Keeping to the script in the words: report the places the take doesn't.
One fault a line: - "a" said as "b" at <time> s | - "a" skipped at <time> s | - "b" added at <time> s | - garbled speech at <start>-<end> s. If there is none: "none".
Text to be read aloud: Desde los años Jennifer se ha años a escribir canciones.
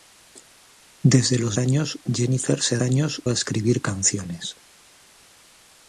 none